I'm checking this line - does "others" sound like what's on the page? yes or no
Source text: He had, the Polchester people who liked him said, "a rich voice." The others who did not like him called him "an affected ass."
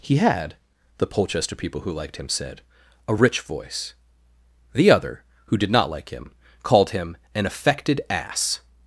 no